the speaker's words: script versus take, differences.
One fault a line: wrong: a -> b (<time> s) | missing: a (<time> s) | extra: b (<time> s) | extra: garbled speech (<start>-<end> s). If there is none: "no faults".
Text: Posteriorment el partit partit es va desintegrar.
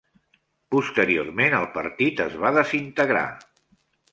missing: partit (2.2 s)